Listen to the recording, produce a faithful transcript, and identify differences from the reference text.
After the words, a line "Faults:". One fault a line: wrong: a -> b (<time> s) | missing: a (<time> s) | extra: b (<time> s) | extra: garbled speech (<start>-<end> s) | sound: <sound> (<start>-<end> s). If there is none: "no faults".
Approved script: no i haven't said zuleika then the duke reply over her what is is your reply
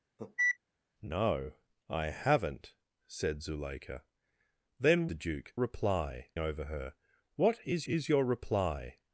no i haven't said zuleika then the duke reply over her what is is your reply
Faults:
sound: cough (0.2-0.6 s)